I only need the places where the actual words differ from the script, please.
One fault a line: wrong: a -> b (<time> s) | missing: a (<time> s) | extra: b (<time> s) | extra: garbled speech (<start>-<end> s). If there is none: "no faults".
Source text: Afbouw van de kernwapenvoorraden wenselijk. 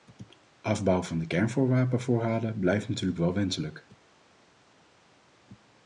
extra: blijft natuurlijk wel (2.6 s)